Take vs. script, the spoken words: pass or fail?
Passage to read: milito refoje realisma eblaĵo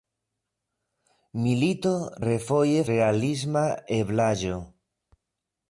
pass